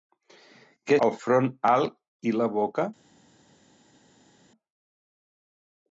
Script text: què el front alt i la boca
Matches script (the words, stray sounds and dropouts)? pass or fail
pass